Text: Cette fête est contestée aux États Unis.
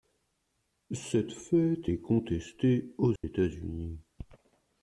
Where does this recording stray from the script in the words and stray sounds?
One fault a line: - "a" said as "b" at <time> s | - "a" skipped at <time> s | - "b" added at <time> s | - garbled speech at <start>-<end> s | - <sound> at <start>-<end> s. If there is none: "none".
- dropout at 3.2-3.2 s